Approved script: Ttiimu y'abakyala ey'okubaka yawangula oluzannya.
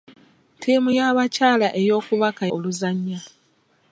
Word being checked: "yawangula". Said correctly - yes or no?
no